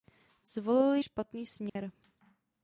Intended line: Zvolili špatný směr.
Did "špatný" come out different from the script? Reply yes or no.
no